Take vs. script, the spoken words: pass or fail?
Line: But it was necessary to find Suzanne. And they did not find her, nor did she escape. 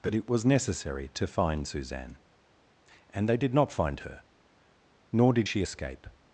pass